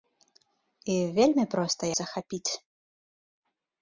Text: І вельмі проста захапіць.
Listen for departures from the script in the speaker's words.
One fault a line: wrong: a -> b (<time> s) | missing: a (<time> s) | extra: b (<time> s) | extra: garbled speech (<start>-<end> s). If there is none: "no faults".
no faults